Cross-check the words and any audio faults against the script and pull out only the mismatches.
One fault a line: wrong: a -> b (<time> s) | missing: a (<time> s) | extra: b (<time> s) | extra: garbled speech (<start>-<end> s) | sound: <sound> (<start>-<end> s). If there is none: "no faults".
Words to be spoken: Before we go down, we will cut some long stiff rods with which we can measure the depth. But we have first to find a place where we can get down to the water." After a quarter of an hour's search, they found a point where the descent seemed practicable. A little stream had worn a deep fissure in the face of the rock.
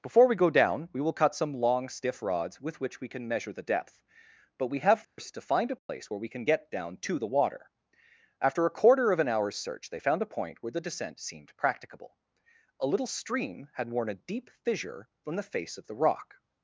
sound: dropout (5.0-5.2 s)
sound: dropout (5.8-5.9 s)
wrong: in -> from (15.2 s)